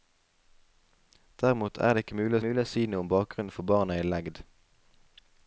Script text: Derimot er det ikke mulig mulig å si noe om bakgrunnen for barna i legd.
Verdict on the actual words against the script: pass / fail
pass